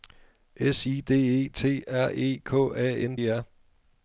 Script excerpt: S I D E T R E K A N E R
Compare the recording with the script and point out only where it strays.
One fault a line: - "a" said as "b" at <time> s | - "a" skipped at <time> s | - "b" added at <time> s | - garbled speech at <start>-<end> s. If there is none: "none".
none